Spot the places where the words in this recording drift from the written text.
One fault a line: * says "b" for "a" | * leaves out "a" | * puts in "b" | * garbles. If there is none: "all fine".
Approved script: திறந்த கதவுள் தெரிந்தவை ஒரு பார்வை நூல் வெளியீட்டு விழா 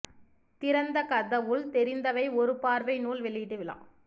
all fine